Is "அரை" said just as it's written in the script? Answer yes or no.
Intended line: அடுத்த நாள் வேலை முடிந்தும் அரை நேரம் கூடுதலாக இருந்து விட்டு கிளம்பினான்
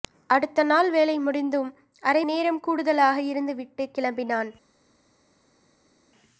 yes